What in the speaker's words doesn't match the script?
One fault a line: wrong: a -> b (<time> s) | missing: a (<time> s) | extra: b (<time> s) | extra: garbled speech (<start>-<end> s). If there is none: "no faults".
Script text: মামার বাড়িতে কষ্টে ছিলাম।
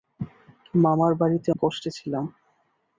no faults